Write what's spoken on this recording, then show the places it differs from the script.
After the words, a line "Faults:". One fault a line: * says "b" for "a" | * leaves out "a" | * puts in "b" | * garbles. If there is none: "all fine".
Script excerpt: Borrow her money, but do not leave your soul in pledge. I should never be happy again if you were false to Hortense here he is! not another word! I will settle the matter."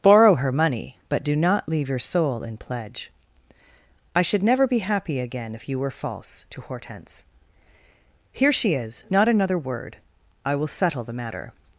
Borrow her money, but do not leave your soul in pledge. I should never be happy again if you were false to Hortense here she is! not another word! I will settle the matter."
Faults:
* says "she" for "he"